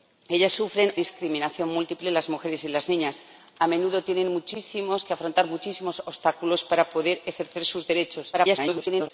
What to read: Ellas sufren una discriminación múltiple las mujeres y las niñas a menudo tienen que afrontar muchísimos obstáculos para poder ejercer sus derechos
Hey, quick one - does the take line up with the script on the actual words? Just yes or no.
no